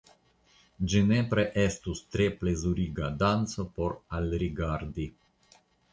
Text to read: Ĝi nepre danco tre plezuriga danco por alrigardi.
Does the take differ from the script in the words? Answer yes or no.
yes